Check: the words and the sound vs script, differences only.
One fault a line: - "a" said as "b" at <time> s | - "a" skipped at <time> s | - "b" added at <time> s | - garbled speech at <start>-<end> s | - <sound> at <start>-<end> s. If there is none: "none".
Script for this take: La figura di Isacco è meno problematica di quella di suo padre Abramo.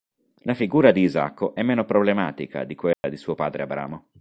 - dropout at 2.9-3.0 s